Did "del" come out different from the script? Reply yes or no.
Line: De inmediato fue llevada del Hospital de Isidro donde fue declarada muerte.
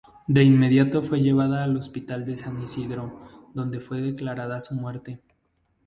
yes